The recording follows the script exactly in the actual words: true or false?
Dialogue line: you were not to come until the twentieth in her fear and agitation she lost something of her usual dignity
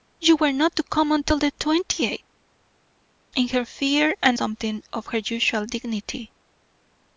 false